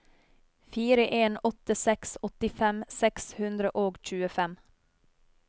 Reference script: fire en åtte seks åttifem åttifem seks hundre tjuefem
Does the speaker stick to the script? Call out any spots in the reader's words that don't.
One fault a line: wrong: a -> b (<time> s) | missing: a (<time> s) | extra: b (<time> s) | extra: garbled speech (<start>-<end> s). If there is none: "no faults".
missing: åttifem (2.8 s)
extra: og (3.9 s)